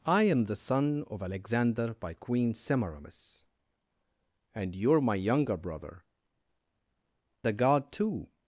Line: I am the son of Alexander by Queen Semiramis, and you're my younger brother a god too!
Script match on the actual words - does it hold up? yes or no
yes